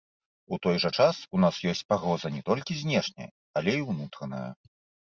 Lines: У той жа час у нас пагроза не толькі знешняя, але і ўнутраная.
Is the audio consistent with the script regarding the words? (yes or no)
no